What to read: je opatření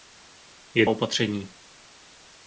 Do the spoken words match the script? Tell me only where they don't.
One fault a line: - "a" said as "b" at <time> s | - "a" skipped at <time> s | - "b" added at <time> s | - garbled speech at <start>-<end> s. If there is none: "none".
none